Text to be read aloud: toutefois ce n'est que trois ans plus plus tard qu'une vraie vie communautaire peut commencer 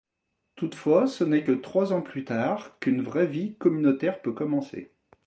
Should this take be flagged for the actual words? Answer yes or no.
yes